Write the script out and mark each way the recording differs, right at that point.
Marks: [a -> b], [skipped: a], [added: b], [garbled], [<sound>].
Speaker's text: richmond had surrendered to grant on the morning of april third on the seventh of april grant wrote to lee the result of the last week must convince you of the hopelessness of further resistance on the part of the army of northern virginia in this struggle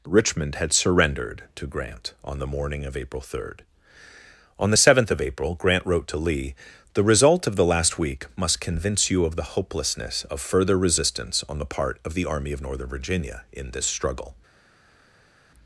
richmond had surrendered to grant on the morning of april third on the seventh of april grant wrote to lee the result of the last week must convince you of the hopelessness of further resistance on the part of the army of northern virginia in this struggle